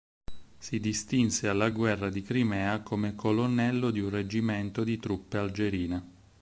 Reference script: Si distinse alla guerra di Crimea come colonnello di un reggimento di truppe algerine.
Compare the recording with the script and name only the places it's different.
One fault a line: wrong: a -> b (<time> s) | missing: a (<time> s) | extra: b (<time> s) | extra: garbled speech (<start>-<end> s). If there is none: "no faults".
no faults